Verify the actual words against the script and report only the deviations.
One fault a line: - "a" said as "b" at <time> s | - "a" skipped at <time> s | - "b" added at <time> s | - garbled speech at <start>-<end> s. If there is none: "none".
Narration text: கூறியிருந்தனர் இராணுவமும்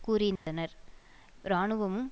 none